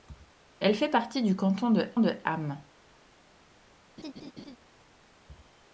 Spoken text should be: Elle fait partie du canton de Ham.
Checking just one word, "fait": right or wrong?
right